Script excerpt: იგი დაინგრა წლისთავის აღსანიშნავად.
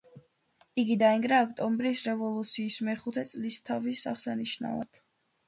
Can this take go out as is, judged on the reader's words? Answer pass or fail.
fail